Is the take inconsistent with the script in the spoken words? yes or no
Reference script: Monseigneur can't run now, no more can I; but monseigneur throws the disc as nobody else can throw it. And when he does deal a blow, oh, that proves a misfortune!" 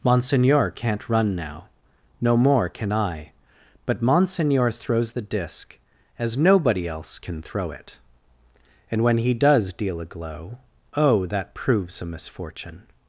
yes